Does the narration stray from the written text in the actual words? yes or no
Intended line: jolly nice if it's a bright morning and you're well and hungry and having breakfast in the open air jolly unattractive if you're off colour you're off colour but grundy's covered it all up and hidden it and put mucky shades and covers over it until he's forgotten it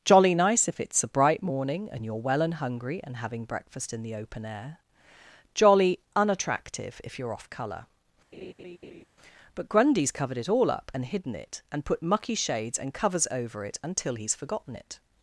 yes